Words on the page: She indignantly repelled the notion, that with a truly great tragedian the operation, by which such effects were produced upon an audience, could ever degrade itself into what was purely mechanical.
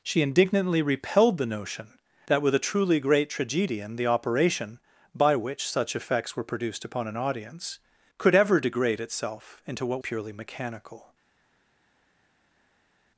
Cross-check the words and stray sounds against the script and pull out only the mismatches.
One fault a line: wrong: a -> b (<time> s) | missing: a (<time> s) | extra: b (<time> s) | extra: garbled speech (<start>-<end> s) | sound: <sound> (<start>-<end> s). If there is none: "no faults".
missing: was (10.0 s)